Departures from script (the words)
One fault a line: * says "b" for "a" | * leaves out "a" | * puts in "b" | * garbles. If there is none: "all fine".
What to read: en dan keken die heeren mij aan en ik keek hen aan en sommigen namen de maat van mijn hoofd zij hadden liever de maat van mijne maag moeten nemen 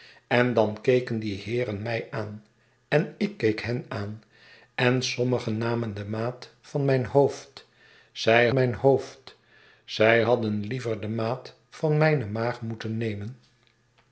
* puts in "mijn hoofd zij"